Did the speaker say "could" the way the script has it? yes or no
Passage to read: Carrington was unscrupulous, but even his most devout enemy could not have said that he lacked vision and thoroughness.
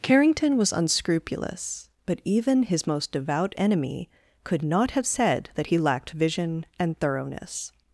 yes